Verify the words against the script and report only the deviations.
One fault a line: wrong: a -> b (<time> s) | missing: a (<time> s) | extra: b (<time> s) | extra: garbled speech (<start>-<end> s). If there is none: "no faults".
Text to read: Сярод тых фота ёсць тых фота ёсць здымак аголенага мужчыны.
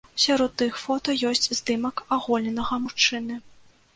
missing: тых фота ёсць (1.5 s)